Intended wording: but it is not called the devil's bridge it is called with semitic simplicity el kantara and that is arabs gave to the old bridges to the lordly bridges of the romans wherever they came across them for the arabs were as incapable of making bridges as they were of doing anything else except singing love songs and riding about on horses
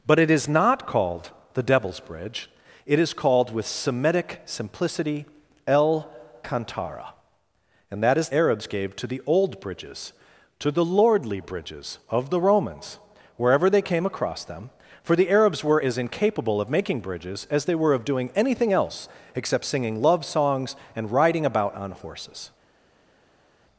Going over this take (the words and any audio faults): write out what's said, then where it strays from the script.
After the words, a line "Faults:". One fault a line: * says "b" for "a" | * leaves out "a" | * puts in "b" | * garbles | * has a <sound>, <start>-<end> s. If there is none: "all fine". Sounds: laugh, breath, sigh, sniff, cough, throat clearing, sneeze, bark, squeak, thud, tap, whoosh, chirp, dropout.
but it is not called the devil's bridge it is called with semitic simplicity el kantara and that is arabs gave to the old bridges to the lordly bridges of the romans wherever they came across them for the arabs were as incapable of making bridges as they were of doing anything else except singing love songs and riding about on horses
Faults:
all fine